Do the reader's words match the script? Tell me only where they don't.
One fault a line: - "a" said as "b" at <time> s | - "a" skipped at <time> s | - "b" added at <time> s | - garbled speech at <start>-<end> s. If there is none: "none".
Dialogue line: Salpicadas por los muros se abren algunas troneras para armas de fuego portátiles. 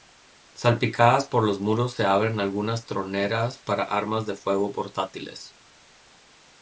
none